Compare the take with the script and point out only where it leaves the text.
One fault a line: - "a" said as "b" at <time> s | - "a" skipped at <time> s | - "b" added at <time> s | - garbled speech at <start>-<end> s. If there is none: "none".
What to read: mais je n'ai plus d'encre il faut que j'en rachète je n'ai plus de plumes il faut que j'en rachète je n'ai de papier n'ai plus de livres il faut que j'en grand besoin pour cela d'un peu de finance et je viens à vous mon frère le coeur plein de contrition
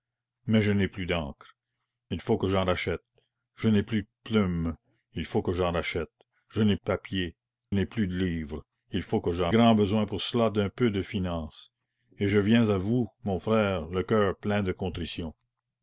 none